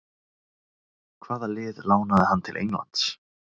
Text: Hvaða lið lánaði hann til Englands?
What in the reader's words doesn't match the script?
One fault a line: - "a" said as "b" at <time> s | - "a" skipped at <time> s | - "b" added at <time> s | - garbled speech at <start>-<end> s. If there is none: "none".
none